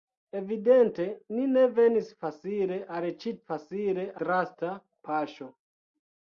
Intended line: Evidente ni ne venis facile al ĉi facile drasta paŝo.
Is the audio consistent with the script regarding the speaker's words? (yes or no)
yes